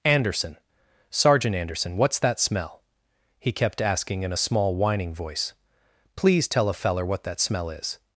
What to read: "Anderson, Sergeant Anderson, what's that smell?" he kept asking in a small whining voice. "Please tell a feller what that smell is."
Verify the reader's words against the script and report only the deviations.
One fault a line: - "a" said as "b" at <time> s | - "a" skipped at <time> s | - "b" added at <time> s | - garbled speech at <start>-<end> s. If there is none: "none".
none